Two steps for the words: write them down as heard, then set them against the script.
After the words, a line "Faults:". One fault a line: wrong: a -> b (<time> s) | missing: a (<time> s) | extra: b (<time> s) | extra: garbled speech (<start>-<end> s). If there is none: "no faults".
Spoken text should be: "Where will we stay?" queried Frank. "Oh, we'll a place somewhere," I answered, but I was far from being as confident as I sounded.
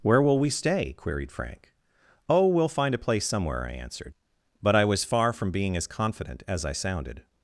"Where will we stay?" queried Frank. "Oh, we'll find a place somewhere," I answered, but I was far from being as confident as I sounded.
Faults:
extra: find (2.7 s)